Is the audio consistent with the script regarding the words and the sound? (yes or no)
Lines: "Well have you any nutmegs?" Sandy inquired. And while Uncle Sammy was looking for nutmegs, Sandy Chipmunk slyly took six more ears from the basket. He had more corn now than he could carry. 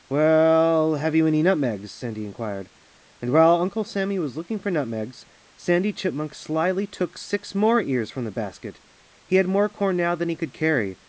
yes